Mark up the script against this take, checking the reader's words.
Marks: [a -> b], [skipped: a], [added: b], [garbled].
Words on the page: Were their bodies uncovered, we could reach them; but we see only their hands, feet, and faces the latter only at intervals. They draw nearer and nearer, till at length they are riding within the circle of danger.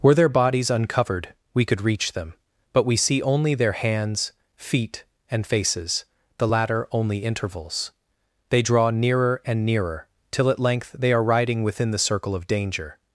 Were their bodies uncovered, we could reach them; but we see only their hands, feet, and faces the latter only [skipped: at] intervals. They draw nearer and nearer, till at length they are riding within the circle of danger.